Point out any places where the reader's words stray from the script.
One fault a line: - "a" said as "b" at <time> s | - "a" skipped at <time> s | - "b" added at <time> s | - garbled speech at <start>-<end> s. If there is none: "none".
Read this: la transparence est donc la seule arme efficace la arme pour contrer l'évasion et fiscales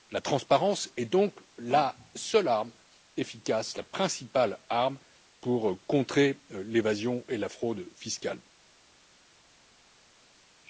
- "principale" added at 3.8 s
- "la fraude" added at 7.4 s